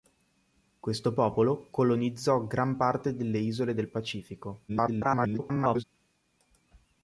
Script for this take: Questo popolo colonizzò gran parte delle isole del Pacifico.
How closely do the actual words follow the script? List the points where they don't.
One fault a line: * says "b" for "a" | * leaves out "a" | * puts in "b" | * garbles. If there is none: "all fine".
* garbles